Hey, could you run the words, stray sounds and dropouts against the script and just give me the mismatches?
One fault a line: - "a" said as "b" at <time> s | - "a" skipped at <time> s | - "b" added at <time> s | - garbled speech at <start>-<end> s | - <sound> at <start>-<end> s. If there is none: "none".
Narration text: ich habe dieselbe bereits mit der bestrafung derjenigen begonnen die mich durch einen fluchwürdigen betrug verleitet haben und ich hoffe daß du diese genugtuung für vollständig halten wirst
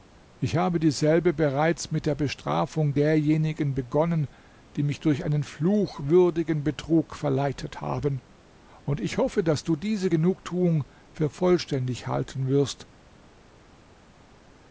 none